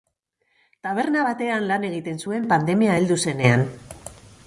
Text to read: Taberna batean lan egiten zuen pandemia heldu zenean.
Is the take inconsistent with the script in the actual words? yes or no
no